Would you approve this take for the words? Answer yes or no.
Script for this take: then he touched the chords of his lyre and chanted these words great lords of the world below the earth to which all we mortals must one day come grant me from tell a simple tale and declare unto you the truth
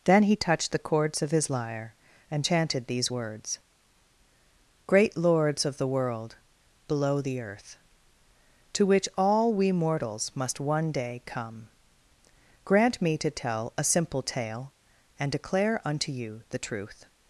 no